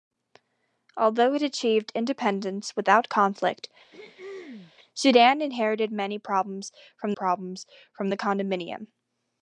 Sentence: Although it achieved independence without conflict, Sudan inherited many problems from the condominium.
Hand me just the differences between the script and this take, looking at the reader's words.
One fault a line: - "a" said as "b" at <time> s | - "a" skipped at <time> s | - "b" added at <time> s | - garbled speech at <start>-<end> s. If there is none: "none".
- "problems from" added at 7.1 s